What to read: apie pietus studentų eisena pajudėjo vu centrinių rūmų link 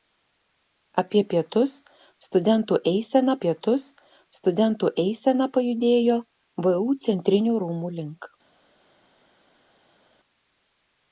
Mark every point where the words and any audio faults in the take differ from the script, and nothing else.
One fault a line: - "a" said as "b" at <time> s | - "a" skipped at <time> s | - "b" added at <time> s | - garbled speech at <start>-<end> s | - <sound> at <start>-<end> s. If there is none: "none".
- "pietus studentų eisena" added at 3.4 s